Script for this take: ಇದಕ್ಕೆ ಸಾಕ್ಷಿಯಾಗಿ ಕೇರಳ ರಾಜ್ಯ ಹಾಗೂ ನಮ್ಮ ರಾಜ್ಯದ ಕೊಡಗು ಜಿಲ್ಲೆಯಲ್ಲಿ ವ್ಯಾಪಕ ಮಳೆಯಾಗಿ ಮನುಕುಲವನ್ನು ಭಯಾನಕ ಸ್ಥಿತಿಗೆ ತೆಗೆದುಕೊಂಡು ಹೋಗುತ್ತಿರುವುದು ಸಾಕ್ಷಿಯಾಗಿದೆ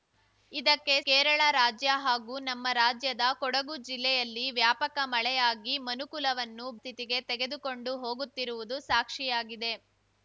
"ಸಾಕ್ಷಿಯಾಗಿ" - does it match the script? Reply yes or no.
no